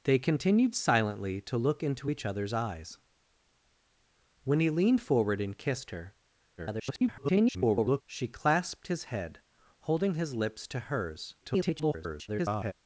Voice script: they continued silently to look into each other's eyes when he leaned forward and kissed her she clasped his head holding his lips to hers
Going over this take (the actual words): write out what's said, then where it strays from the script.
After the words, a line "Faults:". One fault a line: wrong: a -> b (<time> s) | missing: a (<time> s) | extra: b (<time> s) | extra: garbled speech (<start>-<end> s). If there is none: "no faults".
they continued silently to look into each other's eyes when he leaned forward and kissed her [garbled] she clasped his head holding his lips to hers [garbled]
Faults:
extra: garbled speech (6.6-8.0 s)
extra: garbled speech (11.4-12.7 s)